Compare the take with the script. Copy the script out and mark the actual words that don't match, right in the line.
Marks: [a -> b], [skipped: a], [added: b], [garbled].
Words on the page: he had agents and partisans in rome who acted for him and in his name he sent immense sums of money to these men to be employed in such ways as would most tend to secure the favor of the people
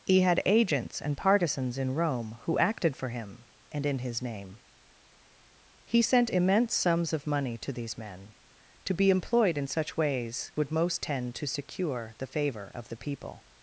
he had agents and partisans in rome who acted for him and in his name he sent immense sums of money to these men to be employed in such ways [skipped: as] would most tend to secure the favor of the people